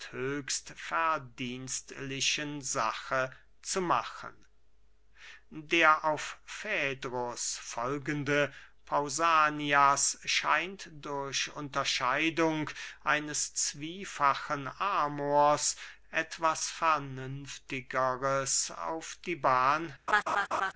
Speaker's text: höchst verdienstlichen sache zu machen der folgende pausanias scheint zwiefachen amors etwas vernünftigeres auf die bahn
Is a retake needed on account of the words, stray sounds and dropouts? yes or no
yes